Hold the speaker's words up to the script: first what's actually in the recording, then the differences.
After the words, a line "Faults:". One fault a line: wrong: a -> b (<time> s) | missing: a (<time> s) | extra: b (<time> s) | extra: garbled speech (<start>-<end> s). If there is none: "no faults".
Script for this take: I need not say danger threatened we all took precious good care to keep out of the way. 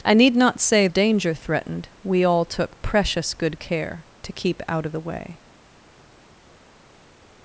I need not say danger threatened we all took precious good care to keep out of the way.
Faults:
no faults